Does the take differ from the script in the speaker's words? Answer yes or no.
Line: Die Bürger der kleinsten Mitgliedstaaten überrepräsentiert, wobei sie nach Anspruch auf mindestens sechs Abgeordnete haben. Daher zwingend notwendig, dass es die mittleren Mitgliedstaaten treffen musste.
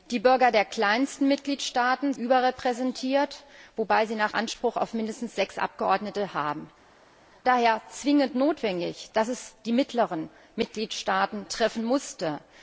no